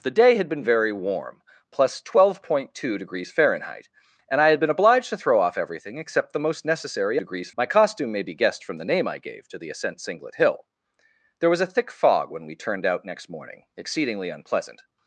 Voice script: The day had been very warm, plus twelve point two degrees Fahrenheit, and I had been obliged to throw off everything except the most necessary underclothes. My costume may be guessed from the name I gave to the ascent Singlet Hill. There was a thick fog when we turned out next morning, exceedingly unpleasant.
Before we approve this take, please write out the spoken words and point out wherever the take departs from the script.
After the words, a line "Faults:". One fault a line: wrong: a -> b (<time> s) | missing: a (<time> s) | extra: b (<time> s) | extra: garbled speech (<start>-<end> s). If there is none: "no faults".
The day had been very warm, plus twelve point two degrees Fahrenheit, and I had been obliged to throw off everything except the most necessary degrees. My costume may be guessed from the name I gave to the ascent Singlet Hill. There was a thick fog when we turned out next morning, exceedingly unpleasant.
Faults:
wrong: underclothes -> degrees (7.2 s)